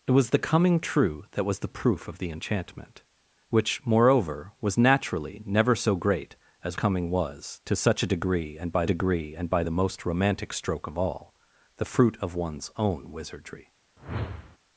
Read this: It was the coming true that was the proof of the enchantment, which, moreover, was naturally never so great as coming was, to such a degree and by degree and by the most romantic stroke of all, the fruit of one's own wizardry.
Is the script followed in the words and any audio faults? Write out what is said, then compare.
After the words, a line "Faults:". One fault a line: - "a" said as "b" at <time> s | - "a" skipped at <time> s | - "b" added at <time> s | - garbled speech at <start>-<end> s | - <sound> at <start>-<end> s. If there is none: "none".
It was the coming true that was the proof of the enchantment, which, moreover, was naturally never so great as coming was, to such a degree and by degree and by the most romantic stroke of all, the fruit of one's own wizardry.
Faults:
- whoosh at 14.0-14.6 s